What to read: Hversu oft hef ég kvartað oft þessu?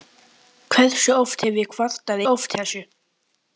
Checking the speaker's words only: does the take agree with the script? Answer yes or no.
yes